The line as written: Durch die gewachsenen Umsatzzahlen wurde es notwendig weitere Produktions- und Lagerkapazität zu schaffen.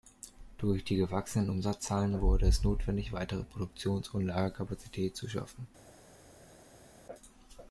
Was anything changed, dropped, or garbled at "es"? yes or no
no